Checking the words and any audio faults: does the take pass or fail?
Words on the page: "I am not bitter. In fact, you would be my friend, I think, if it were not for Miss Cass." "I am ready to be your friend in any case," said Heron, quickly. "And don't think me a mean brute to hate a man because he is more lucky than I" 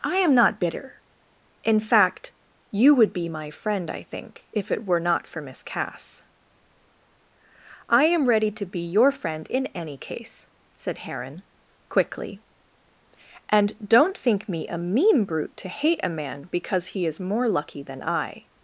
pass